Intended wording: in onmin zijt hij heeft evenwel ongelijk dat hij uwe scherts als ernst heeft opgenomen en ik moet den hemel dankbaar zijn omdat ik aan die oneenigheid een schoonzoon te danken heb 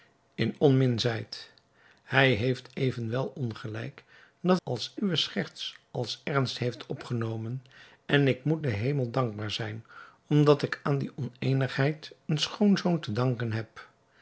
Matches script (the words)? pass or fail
fail